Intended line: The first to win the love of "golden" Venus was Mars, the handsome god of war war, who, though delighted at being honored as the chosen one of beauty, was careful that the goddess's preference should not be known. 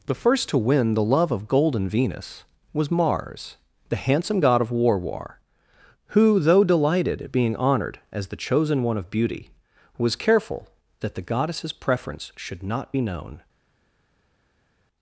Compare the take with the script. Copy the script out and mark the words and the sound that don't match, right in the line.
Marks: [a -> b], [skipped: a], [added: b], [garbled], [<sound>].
The first to win the love of "golden" Venus was Mars, the handsome god of war war, who, though delighted at being honored as the chosen one of beauty, was careful that the goddess's preference should not be known.